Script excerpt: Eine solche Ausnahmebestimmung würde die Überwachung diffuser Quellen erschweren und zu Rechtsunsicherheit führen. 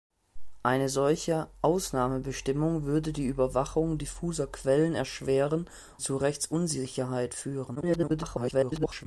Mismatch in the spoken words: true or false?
true